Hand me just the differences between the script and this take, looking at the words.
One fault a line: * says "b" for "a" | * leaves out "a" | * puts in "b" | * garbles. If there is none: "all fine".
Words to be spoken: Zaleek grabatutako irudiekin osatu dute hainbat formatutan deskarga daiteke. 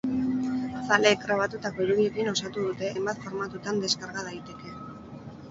all fine